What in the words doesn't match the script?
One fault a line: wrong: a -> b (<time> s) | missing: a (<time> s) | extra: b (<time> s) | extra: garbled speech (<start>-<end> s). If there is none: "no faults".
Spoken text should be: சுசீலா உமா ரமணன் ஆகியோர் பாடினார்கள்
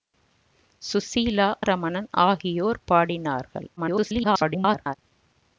missing: உமா (1.5 s)
extra: garbled speech (3.8-5.0 s)